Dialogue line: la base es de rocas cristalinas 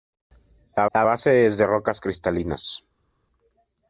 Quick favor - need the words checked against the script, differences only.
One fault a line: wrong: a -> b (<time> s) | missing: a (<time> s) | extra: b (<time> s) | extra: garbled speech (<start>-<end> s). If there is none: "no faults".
extra: la (0.9 s)